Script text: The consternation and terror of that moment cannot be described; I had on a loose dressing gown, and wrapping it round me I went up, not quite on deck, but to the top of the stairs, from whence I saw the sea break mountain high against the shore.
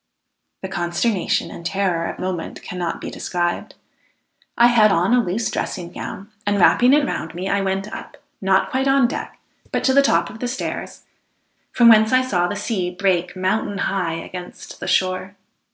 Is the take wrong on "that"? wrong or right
wrong